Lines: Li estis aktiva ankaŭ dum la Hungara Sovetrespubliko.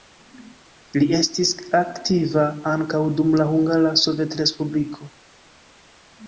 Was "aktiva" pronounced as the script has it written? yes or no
yes